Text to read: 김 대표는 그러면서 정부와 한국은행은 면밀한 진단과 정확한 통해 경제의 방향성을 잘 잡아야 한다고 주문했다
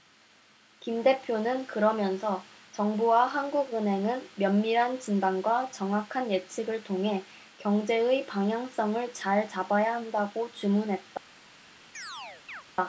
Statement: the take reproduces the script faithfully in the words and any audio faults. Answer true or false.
false